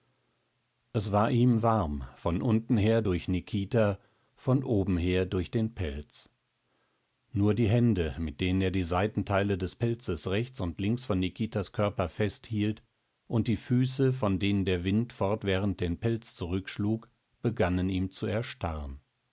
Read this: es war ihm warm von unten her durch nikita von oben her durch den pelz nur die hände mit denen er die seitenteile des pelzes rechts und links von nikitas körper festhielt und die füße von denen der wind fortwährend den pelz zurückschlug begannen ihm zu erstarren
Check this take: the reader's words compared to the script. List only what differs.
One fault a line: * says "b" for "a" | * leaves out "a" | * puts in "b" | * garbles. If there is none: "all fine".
all fine